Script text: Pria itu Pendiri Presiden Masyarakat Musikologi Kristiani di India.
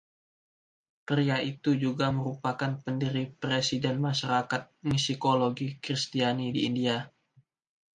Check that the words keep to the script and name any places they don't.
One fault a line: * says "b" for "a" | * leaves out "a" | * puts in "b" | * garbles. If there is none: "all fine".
* puts in "juga merupakan"